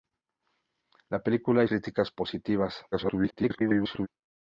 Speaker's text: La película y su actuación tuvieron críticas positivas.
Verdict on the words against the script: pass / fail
fail